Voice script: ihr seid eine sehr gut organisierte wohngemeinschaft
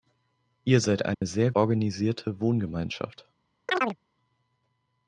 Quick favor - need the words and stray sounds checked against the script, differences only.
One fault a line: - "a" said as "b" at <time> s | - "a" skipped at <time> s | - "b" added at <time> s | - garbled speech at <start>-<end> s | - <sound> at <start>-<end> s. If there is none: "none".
- dropout at 1.1-1.2 s
- "gut" skipped at 1.5 s
- chirp at 3.7-4.0 s